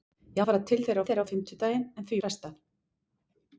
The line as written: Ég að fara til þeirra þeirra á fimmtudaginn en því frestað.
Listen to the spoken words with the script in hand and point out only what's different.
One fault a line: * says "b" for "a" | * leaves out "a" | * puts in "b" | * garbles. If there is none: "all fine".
all fine